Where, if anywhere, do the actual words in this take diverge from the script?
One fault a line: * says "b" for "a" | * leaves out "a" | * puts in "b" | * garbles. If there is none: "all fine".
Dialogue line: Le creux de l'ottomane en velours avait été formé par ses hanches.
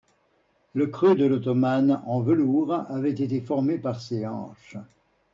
all fine